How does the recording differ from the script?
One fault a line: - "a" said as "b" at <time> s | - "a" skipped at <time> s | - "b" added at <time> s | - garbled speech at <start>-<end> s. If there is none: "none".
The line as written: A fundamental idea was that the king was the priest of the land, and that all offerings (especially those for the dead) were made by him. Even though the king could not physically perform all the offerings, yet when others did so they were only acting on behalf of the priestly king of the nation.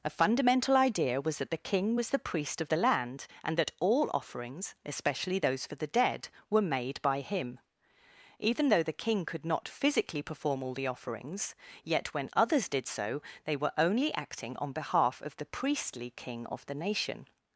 none